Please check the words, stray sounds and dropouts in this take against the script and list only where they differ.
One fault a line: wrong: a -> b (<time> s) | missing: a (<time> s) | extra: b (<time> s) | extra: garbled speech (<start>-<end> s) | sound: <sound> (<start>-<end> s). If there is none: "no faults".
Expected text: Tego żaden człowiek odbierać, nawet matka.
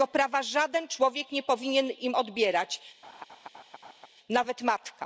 extra: prawa (0.1 s)
extra: nie powinien im (1.3 s)
sound: laugh (3.0-4.1 s)